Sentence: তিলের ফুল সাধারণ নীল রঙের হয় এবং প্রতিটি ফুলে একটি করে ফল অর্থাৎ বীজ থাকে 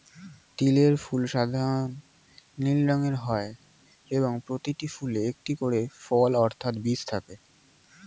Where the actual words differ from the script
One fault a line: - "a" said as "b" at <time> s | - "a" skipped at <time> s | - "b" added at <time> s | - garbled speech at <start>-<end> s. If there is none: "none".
none